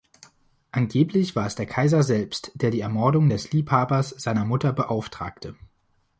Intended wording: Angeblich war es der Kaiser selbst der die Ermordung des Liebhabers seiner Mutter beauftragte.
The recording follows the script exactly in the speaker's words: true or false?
true